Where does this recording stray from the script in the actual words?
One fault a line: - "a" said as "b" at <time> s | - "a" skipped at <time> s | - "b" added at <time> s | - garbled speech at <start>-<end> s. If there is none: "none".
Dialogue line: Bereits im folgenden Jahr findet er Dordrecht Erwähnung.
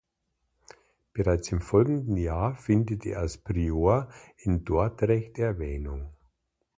- "als Prior in" added at 3.2 s